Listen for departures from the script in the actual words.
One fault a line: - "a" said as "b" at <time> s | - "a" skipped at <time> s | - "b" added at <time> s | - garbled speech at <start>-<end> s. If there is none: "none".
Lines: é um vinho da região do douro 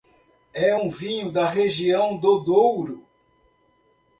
none